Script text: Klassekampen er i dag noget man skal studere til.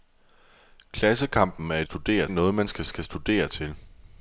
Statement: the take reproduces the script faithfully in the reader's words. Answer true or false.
false